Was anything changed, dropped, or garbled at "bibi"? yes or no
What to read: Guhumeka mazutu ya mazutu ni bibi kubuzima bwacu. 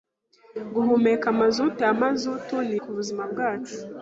yes